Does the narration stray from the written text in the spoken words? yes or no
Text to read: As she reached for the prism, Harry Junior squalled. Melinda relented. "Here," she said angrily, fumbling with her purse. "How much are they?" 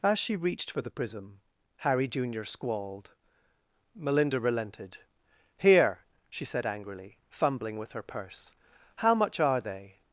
no